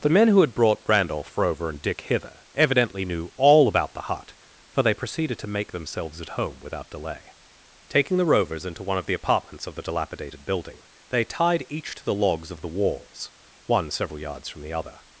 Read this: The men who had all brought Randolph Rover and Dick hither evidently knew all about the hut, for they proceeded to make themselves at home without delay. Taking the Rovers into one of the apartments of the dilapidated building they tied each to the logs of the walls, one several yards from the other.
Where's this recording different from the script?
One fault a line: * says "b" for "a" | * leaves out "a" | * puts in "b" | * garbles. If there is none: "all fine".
* leaves out "all"